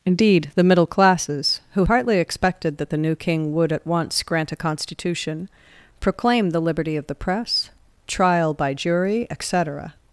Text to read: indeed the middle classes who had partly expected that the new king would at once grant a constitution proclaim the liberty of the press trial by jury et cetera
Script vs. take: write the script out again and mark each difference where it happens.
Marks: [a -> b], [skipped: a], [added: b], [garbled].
indeed the middle classes who [skipped: had] partly expected that the new king would at once grant a constitution proclaim the liberty of the press trial by jury et cetera